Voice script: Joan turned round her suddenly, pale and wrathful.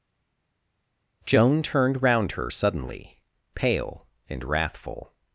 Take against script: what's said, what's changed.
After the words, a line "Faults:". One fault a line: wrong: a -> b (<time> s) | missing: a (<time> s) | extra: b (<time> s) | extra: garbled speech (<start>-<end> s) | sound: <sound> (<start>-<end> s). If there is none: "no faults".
Joan turned round her suddenly, pale and wrathful.
Faults:
no faults